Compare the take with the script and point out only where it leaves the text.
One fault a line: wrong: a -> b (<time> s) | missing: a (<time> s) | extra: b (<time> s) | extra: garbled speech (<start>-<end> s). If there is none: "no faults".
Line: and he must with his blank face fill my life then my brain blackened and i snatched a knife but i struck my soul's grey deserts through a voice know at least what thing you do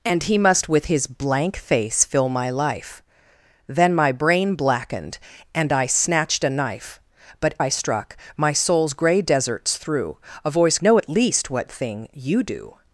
no faults